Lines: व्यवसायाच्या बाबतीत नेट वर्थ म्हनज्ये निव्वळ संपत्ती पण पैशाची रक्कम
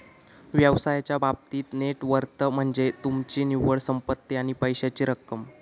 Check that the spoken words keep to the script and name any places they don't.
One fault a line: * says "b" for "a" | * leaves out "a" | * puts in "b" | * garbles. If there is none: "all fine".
* puts in "तुमची"
* says "आणि" for "पण"